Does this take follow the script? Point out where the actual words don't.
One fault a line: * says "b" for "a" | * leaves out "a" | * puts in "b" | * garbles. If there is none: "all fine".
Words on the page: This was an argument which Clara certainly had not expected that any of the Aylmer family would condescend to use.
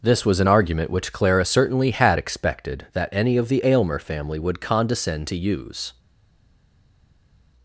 * leaves out "not"